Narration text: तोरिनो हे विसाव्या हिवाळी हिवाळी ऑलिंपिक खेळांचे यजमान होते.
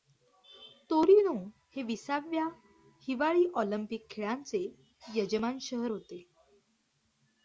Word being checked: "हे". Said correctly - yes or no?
yes